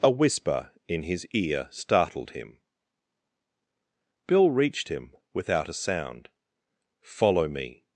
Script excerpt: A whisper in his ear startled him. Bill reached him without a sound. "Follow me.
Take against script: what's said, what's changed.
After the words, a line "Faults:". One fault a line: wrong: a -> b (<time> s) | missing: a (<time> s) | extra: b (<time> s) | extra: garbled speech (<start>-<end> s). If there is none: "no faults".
A whisper in his ear startled him. Bill reached him without a sound. "Follow me.
Faults:
no faults